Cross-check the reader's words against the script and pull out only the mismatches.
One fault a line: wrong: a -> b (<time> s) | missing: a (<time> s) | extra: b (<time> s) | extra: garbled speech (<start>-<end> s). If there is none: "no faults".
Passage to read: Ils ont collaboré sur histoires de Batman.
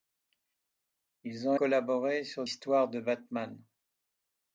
no faults